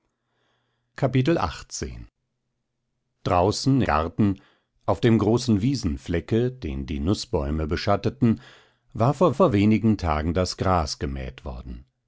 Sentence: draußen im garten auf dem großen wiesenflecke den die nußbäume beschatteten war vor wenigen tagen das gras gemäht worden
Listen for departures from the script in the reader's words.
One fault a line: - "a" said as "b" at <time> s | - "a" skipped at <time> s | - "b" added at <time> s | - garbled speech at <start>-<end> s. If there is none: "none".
- "im" skipped at 3.8 s
- "vor" added at 9.3 s